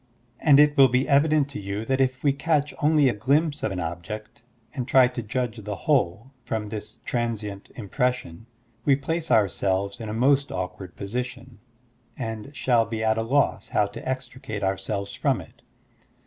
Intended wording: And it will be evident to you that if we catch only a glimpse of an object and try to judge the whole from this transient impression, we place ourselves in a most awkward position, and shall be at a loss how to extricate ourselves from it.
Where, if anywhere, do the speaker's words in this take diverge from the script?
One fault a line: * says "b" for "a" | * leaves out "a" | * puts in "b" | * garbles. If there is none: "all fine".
all fine